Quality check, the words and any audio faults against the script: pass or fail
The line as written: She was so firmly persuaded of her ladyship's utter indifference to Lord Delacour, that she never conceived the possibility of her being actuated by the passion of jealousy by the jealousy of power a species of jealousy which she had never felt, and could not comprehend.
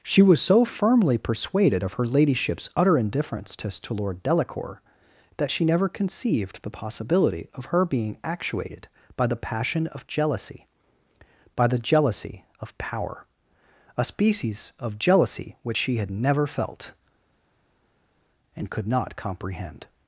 fail